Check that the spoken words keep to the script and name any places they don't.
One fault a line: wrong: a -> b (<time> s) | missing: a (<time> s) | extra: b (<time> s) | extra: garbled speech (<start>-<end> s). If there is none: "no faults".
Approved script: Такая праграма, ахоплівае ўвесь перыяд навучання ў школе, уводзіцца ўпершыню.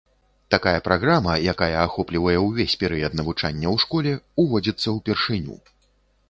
extra: якая (1.5 s)